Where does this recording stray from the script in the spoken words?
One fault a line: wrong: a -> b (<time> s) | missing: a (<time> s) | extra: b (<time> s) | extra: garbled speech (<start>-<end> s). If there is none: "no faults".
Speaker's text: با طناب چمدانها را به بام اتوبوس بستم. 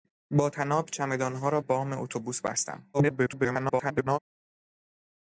missing: به (1.6 s)
extra: garbled speech (2.9-4.2 s)